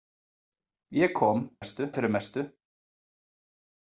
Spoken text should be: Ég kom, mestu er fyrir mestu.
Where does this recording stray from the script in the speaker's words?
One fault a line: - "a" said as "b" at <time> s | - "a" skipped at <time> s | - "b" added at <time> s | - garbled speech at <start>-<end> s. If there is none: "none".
none